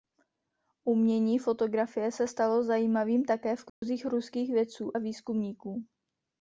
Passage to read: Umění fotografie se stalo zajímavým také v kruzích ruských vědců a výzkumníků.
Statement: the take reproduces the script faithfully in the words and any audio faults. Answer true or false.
false